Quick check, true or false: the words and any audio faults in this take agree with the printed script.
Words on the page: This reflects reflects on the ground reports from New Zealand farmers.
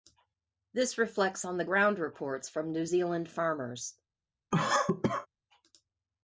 false